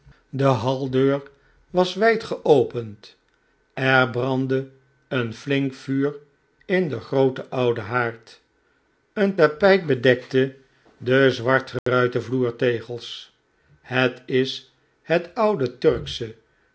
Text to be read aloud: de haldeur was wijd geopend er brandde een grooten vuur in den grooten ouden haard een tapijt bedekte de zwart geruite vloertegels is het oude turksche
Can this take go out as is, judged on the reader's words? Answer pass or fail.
fail